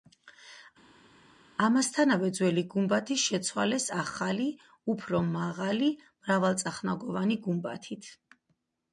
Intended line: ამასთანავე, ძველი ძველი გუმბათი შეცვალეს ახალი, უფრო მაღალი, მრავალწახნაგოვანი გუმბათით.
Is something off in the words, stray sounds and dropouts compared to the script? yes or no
yes